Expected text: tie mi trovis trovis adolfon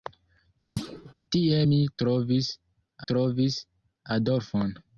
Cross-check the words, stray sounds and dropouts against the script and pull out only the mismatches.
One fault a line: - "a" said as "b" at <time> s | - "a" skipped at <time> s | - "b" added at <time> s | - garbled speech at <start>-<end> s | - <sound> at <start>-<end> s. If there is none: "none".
- thud at 0.8-1.1 s